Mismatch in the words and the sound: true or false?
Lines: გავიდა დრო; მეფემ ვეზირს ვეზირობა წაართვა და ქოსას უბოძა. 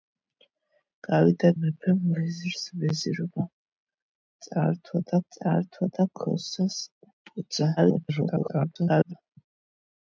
true